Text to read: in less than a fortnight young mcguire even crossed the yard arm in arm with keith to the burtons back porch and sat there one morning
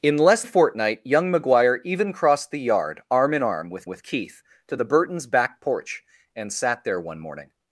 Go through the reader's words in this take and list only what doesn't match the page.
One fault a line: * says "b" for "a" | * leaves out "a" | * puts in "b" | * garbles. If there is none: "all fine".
* leaves out "than"
* puts in "with"